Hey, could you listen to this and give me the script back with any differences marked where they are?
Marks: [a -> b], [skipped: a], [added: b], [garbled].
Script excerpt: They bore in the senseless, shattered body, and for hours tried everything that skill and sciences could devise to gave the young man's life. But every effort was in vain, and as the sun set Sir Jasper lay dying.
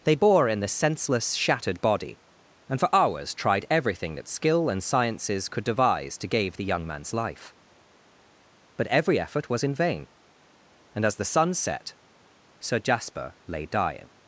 They bore in the senseless, shattered body, and for hours tried everything that skill and sciences could devise to gave the young man's life. But every effort was in vain, and as the sun set Sir Jasper lay dying.